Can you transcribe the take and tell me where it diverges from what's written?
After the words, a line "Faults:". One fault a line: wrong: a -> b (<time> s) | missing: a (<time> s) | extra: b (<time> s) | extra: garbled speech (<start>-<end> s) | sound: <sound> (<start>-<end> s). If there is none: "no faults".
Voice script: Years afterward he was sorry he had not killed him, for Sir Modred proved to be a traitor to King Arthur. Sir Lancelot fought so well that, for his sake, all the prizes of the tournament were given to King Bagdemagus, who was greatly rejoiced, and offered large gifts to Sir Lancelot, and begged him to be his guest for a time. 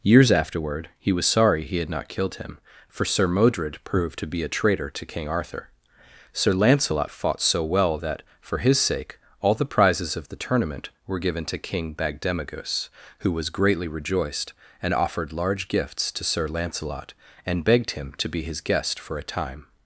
Years afterward he was sorry he had not killed him, for Sir Modred proved to be a traitor to King Arthur. Sir Lancelot fought so well that, for his sake, all the prizes of the tournament were given to King Bagdemagus, who was greatly rejoiced, and offered large gifts to Sir Lancelot, and begged him to be his guest for a time.
Faults:
no faults